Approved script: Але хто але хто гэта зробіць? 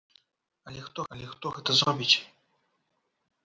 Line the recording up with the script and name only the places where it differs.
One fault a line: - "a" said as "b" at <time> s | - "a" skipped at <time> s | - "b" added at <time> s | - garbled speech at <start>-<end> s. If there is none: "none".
none